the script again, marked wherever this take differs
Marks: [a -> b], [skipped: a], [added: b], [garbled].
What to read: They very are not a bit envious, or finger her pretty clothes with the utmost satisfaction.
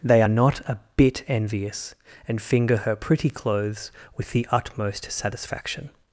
They [skipped: very] are not a bit envious, [or -> and] finger her pretty clothes with the utmost satisfaction.